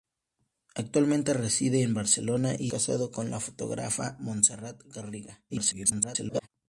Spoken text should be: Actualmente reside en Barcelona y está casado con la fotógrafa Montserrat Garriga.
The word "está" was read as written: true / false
false